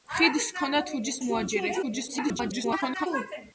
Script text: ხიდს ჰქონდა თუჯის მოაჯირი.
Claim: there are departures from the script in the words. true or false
true